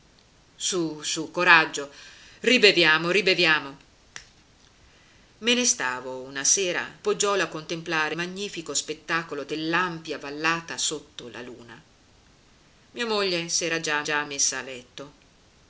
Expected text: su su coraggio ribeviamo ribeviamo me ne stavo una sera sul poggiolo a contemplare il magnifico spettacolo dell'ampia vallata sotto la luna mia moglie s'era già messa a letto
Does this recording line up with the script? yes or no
no